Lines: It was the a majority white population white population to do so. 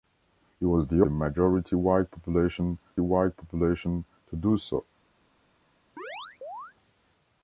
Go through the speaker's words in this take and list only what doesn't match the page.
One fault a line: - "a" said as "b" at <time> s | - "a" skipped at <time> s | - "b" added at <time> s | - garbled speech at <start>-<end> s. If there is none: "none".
none